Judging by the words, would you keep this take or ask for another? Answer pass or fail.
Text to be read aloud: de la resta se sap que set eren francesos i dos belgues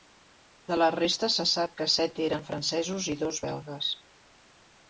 pass